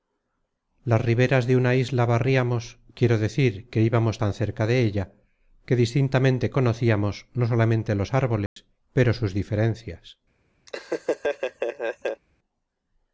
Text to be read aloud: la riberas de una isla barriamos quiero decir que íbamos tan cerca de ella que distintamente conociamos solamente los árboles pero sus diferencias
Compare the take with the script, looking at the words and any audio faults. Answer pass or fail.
fail